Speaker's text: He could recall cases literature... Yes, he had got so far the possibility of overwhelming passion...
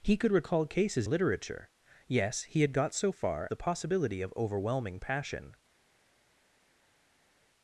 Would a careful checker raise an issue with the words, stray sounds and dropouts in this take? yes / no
no